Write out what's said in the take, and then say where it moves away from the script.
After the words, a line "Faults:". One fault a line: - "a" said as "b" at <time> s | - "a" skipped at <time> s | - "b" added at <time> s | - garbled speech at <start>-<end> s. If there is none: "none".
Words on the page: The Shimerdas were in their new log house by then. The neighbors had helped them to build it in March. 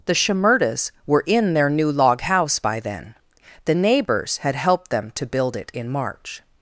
The Shimerdas were in their new log house by then. The neighbors had helped them to build it in March.
Faults:
none